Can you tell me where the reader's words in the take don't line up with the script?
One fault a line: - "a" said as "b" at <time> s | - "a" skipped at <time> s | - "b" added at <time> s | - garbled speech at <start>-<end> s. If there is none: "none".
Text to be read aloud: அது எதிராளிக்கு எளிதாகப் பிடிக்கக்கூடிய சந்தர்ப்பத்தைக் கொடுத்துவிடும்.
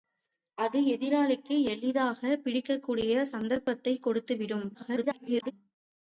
- garbled speech at 4.7-5.5 s